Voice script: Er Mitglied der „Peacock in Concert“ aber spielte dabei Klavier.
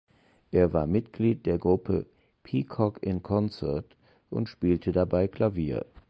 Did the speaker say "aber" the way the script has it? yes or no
no